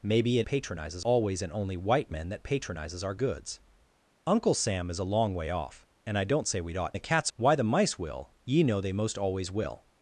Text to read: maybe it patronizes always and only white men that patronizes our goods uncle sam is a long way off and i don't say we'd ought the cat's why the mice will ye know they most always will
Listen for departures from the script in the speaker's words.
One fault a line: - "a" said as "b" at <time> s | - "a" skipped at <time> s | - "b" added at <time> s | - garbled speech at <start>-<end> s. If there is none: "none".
none